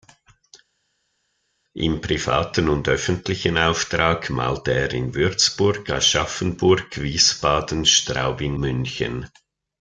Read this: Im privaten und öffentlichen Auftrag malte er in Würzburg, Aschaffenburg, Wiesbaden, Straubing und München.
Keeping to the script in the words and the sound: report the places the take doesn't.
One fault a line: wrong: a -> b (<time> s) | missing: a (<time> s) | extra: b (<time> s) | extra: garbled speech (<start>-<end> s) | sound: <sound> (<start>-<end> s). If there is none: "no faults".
missing: und (8.6 s)